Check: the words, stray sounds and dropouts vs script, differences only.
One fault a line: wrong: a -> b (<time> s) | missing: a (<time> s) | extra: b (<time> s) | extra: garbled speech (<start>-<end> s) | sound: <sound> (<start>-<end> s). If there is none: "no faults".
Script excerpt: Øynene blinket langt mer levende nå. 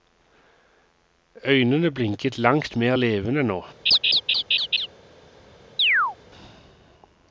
sound: laugh (3.9-4.9 s)
sound: chirp (5.8-6.2 s)